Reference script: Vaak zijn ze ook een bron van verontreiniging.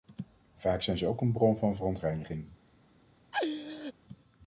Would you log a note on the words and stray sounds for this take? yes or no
yes